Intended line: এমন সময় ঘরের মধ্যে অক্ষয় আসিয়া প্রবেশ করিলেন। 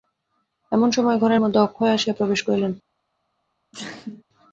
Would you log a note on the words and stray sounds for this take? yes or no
yes